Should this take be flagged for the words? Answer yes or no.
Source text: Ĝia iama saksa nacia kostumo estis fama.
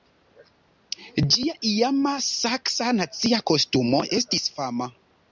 no